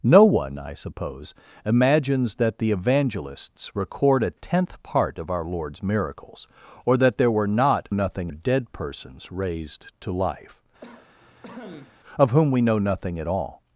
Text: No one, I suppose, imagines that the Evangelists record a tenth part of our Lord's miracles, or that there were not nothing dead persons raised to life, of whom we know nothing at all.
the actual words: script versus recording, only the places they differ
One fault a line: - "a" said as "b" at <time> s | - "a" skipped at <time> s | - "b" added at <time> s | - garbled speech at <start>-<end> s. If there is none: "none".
none